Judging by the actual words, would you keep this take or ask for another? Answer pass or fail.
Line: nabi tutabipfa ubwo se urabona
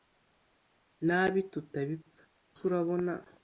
fail